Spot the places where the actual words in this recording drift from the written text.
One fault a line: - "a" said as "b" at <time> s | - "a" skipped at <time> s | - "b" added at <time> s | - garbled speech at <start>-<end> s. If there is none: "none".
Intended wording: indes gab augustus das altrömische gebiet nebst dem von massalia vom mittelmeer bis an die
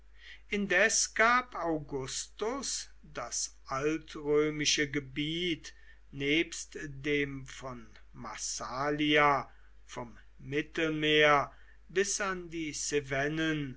none